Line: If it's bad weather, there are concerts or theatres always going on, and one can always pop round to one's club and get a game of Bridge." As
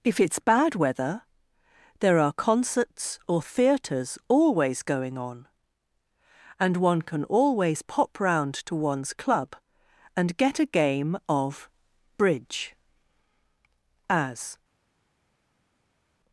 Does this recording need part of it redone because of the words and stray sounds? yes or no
no